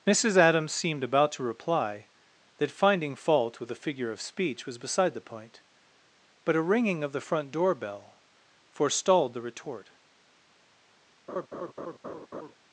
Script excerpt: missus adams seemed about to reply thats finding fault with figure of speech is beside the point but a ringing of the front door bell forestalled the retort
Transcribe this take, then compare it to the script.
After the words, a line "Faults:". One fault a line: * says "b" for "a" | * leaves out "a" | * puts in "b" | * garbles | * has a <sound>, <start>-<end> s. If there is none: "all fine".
missus adams seemed about to reply that finding fault with a figure of speech was beside the point but a ringing of the front door bell forestalled the retort
Faults:
* says "that" for "thats"
* puts in "a"
* says "was" for "is"
* has a laugh, 11.3-12.5 s